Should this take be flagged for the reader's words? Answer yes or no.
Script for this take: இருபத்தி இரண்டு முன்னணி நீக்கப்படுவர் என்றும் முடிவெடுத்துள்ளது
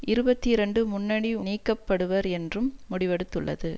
no